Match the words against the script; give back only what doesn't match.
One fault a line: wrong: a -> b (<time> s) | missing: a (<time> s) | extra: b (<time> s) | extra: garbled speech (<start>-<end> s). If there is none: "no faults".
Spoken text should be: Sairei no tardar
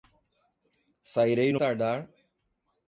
no faults